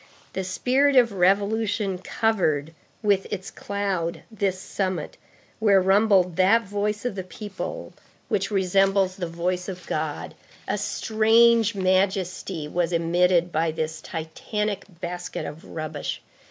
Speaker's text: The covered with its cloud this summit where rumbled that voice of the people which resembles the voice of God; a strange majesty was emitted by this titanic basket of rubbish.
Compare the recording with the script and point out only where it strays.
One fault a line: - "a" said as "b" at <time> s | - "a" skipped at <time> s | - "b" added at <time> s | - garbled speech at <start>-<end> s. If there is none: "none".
- "spirit of revolution" added at 0.4 s